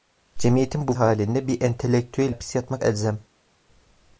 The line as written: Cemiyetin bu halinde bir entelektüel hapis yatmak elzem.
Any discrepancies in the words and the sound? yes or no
no